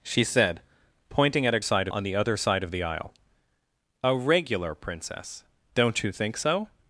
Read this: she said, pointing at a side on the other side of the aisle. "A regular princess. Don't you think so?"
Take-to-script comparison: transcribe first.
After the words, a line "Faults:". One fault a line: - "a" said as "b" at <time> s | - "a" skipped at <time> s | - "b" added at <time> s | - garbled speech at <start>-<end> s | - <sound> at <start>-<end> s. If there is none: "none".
she said, pointing at a side on the other side of the aisle. "A regular princess. Don't you think so?"
Faults:
none